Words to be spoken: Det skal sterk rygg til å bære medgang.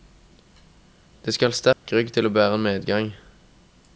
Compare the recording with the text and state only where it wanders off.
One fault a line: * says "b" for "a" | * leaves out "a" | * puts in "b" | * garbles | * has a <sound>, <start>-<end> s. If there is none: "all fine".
* has a dropout, 1.7-1.9 s